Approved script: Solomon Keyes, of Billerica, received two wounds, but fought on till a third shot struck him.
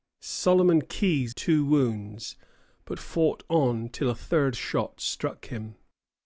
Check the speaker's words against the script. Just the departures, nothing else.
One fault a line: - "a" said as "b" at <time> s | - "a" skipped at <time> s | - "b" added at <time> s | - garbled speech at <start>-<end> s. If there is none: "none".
- "of Billerica received" skipped at 1.4 s